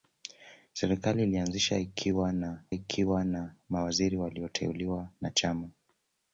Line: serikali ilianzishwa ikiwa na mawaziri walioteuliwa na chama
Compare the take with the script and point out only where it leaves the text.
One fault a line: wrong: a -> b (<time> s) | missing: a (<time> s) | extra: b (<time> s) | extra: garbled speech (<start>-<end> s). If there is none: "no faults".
extra: ikiwa na (2.7 s)